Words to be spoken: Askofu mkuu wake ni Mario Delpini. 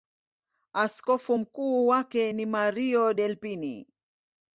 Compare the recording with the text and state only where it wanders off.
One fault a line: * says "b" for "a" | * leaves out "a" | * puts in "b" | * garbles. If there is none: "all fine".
all fine